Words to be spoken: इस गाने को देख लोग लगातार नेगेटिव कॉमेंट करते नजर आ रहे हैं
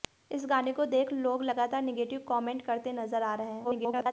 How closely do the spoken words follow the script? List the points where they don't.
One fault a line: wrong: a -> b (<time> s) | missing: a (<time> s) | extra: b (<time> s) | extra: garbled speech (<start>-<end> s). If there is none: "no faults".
extra: garbled speech (3.6-4.1 s)